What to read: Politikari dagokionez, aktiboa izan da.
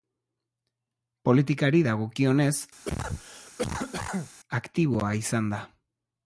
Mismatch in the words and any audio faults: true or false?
true